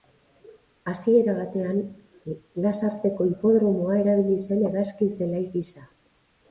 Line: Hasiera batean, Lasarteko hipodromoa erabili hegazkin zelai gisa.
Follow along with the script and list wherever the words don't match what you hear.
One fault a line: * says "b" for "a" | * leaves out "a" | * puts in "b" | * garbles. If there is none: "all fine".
* puts in "zen"